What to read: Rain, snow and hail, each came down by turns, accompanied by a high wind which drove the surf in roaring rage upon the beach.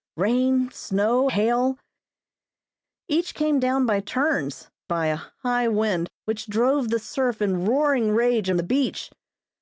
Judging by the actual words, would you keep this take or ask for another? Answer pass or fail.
fail